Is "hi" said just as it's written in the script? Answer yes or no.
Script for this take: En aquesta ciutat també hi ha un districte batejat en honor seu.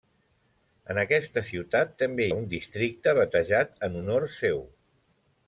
no